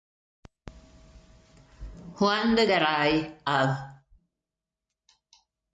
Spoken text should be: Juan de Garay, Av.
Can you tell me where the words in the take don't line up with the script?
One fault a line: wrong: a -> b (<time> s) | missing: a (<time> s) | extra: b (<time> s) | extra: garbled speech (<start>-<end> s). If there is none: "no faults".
no faults